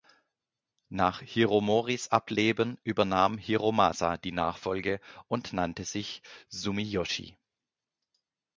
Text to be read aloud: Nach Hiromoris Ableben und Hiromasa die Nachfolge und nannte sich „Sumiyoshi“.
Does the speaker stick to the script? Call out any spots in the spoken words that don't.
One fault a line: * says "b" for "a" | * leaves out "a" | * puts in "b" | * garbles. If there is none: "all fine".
* says "übernahm" for "und"